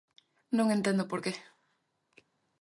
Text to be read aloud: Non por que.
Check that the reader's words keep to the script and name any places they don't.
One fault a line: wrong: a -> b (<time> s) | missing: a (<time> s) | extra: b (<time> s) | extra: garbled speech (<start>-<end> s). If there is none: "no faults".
extra: entendo (0.8 s)